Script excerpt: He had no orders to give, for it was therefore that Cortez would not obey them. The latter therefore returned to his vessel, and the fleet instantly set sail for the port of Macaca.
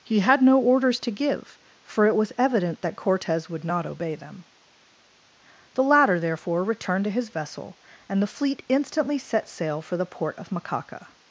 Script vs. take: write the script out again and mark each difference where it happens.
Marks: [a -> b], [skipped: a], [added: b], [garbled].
He had no orders to give, for it was [therefore -> evident] that Cortez would not obey them. The latter therefore returned to his vessel, and the fleet instantly set sail for the port of Macaca.